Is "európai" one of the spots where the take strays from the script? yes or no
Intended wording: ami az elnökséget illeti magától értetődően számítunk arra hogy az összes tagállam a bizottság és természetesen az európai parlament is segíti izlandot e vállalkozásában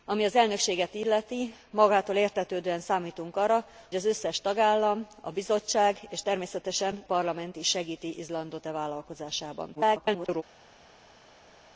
yes